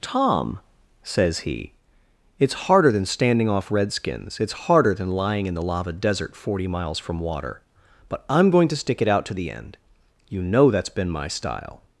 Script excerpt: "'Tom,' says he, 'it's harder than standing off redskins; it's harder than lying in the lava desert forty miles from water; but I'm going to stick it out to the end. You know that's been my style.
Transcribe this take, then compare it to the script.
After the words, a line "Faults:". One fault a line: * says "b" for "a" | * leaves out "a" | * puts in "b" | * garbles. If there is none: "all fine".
"'Tom,' says he, 'it's harder than standing off redskins; it's harder than lying in the lava desert forty miles from water; but I'm going to stick it out to the end. You know that's been my style.
Faults:
all fine